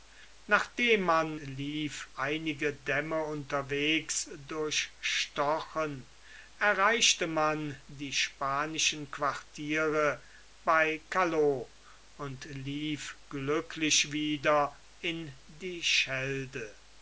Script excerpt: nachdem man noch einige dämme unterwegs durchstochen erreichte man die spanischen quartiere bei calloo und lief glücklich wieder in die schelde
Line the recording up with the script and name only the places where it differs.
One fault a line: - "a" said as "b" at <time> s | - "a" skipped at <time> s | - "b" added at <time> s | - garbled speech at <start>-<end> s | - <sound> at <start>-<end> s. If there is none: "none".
- "noch" said as "lief" at 1.4 s